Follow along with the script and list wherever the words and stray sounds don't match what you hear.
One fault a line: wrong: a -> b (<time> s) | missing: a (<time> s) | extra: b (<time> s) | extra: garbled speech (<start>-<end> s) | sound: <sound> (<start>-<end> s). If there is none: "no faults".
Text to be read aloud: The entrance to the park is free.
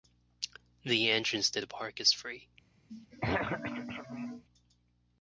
sound: throat clearing (2.9-4.4 s)